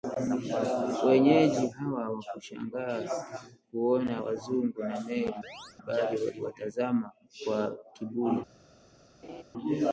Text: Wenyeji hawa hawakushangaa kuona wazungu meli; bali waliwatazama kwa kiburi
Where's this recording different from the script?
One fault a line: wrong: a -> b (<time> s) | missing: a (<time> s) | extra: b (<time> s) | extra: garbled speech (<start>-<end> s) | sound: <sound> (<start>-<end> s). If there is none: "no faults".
extra: na (4.8 s)
sound: chirp (5.4-5.8 s)
sound: laugh (9.2-9.4 s)